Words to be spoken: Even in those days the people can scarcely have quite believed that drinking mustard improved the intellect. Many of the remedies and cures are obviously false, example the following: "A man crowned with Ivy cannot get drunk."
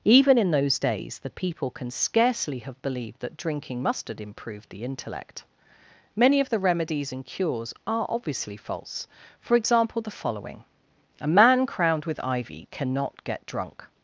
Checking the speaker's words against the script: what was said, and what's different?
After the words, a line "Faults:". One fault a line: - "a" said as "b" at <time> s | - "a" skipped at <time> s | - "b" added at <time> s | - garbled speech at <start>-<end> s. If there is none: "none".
Even in those days the people can scarcely have believed that drinking mustard improved the intellect. Many of the remedies and cures are obviously false, for example the following: "A man crowned with Ivy cannot get drunk."
Faults:
- "quite" skipped at 2.8 s
- "for" added at 9.4 s